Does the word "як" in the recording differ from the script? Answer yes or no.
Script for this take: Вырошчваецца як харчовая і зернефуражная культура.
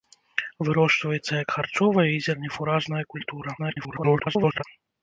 no